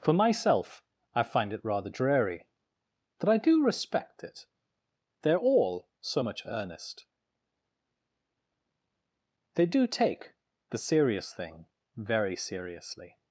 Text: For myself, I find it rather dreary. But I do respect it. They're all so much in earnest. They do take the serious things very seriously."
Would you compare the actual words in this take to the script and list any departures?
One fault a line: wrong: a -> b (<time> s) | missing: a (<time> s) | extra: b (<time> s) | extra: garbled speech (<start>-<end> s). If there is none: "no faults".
missing: in (6.4 s)
wrong: things -> thing (11.3 s)